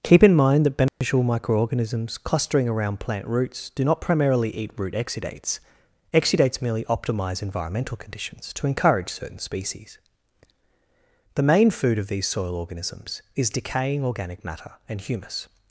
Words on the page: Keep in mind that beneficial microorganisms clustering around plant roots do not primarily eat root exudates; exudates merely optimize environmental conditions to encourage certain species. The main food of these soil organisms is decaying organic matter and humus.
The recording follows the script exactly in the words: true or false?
true